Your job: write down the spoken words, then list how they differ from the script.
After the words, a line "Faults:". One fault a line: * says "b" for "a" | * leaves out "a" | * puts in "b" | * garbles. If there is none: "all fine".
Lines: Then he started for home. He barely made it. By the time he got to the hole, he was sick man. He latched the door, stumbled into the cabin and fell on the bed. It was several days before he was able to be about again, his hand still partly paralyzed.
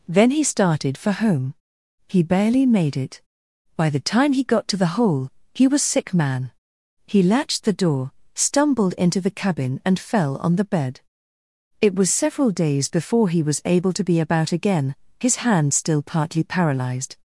Then he started for home. He barely made it. By the time he got to the hole, he was sick man. He latched the door, stumbled into the cabin and fell on the bed. It was several days before he was able to be about again, his hand still partly paralyzed.
Faults:
all fine